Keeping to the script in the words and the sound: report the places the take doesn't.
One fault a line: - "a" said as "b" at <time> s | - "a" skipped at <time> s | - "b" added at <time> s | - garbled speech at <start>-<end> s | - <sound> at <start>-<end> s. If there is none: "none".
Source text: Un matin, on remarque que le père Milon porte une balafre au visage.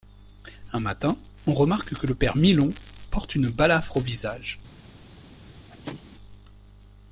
- sneeze at 5.7-6.0 s